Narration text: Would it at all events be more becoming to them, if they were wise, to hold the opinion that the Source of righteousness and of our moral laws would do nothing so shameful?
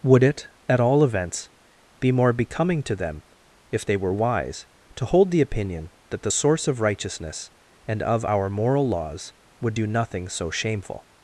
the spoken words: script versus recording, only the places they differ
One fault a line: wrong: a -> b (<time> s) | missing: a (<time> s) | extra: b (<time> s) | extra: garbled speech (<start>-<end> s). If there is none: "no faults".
no faults